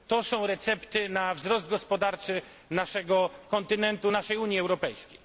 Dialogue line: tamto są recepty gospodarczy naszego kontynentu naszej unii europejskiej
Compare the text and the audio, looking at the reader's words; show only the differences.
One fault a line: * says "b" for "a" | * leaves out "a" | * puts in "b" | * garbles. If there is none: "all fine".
* says "to" for "tamto"
* puts in "na wzrost"